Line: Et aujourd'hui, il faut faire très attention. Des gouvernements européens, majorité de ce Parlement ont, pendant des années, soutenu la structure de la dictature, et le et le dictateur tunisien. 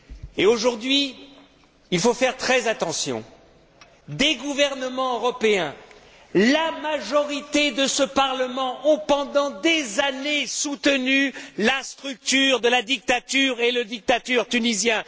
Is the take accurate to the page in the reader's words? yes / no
no